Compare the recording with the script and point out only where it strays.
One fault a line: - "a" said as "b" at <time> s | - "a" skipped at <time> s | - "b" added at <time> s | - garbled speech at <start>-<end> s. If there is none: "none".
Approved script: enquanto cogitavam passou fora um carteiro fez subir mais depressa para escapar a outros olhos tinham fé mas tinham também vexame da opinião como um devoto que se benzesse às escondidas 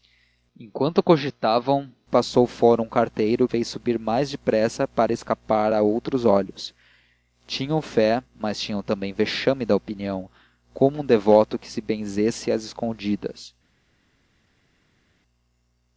none